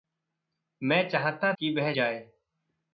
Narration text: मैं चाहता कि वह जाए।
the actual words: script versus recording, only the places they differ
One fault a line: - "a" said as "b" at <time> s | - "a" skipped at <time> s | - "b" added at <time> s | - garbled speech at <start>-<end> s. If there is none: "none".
none